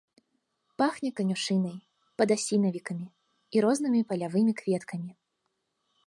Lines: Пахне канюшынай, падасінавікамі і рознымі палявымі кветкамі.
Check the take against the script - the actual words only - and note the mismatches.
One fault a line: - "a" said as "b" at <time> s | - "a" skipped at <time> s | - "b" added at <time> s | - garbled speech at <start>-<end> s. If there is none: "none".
none